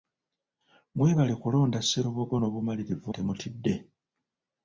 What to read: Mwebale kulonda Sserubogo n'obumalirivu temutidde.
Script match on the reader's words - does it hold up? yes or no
yes